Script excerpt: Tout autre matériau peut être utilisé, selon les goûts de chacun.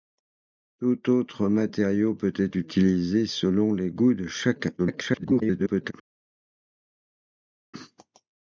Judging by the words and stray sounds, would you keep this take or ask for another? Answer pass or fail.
fail